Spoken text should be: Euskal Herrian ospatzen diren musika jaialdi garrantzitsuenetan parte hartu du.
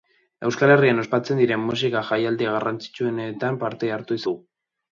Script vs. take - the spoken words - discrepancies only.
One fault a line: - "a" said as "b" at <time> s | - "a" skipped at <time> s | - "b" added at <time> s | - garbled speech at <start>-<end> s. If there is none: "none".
none